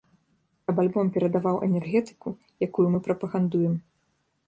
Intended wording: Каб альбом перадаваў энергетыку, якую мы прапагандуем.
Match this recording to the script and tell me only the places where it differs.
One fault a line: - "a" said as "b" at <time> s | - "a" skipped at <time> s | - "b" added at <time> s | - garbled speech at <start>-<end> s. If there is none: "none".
none